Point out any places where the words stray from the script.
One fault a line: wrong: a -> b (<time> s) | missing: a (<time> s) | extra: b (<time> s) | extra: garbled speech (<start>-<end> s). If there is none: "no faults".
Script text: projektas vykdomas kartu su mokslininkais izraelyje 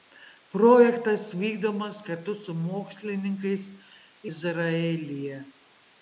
no faults